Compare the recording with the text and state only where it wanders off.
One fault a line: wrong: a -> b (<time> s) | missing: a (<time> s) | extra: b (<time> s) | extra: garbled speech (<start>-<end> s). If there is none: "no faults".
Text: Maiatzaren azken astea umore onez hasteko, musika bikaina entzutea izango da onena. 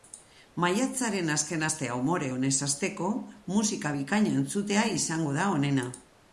no faults